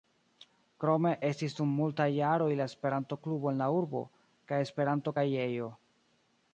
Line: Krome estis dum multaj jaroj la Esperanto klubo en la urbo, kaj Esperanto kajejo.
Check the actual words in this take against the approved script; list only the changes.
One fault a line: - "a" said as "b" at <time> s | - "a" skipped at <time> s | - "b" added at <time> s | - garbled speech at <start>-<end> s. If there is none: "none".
none